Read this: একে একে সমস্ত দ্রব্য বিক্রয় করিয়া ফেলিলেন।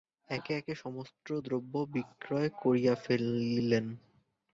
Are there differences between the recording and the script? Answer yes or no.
no